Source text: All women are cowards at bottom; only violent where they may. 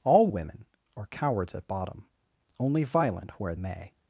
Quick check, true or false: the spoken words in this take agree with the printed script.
false